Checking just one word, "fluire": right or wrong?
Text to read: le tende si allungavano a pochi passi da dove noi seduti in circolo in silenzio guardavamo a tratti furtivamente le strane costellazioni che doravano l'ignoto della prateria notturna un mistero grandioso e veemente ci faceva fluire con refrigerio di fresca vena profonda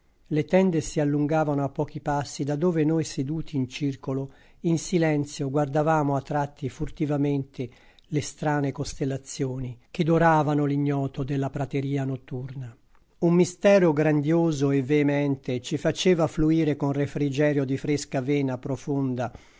right